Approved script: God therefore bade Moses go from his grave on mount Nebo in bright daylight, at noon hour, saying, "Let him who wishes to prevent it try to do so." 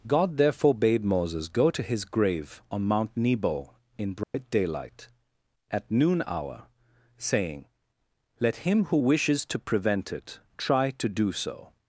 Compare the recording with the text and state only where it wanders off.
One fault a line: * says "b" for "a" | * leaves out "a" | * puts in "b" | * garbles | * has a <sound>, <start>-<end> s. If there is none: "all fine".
* says "to" for "from"
* has a dropout, 4.2-4.3 s